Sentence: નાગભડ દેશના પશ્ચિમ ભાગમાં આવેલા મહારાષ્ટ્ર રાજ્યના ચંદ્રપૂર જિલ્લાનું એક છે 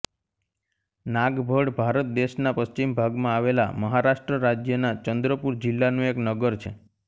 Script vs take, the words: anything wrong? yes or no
yes